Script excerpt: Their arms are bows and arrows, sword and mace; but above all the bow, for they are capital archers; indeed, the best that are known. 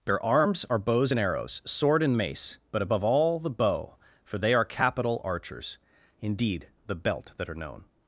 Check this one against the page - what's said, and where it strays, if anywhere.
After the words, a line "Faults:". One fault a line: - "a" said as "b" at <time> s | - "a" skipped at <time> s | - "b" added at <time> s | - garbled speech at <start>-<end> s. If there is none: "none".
Their arms are bows and arrows, sword and mace; but above all the bow, for they are capital archers; indeed, the belt that are known.
Faults:
- "best" said as "belt" at 6.9 s